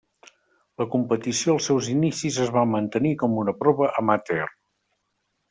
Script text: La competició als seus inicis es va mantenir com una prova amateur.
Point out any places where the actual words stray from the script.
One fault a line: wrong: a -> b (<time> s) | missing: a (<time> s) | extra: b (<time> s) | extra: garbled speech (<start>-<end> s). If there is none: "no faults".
no faults